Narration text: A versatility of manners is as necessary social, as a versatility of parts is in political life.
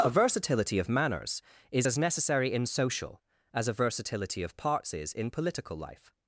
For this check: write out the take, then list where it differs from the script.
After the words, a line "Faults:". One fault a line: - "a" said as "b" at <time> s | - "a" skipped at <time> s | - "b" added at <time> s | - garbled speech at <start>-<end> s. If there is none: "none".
A versatility of manners is as necessary in social, as a versatility of parts is in political life.
Faults:
- "in" added at 2.5 s